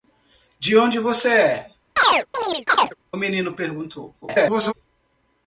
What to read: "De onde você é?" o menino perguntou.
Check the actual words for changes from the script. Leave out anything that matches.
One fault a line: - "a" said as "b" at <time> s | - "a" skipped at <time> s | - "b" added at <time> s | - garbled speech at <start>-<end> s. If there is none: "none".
- garbled speech at 4.2-4.7 s